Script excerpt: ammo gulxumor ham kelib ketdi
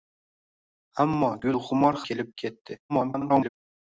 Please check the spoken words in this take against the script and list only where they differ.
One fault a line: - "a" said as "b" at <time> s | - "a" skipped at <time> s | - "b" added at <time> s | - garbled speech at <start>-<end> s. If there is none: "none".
- "ham" skipped at 2.0 s
- garbled speech at 2.9-3.5 s